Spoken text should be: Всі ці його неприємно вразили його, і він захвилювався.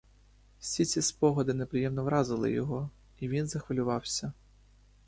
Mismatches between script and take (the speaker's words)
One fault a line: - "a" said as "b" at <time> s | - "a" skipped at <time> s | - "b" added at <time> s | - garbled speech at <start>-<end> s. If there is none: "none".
- "його" said as "спогади" at 1.0 s